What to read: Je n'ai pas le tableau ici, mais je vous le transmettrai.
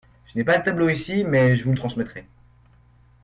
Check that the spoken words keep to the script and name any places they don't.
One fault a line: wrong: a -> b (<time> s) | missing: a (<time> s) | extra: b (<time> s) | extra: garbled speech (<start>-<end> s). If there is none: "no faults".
no faults